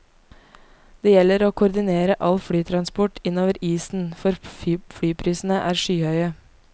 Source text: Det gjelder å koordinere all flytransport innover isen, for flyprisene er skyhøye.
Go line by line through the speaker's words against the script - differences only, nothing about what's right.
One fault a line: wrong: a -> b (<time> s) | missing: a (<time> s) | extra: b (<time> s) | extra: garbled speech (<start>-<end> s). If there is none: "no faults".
no faults